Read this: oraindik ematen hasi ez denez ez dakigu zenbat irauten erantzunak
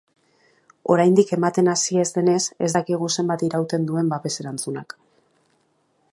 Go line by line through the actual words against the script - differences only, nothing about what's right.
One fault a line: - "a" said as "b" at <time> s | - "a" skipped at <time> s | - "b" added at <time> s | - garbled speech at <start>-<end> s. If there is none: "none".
- "duen babes" added at 3.9 s